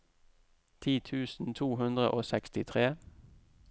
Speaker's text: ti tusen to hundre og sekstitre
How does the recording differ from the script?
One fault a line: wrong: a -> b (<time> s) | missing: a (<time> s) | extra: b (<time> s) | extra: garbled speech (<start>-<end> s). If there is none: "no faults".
no faults